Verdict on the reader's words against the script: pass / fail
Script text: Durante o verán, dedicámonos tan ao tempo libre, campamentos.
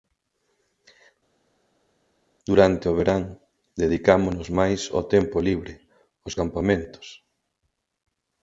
fail